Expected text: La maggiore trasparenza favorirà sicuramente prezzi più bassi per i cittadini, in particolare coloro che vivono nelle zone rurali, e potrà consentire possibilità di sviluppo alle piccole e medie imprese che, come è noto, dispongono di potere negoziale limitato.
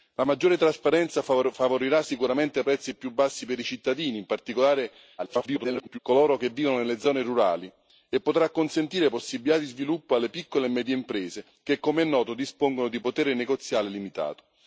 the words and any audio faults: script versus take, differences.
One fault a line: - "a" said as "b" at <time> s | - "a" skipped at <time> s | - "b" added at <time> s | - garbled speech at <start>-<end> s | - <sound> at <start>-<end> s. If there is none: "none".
- garbled speech at 5.2-6.0 s